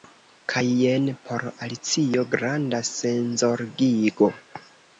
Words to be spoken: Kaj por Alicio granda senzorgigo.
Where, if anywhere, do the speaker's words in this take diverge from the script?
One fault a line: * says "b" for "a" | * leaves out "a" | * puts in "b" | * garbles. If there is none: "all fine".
* puts in "jen"